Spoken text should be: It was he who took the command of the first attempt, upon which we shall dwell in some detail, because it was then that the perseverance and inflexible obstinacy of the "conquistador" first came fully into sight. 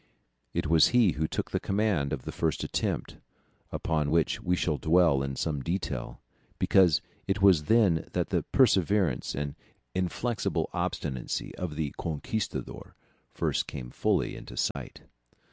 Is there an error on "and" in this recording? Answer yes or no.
no